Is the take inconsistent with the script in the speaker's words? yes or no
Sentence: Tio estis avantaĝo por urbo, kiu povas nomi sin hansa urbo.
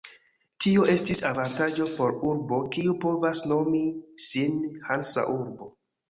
no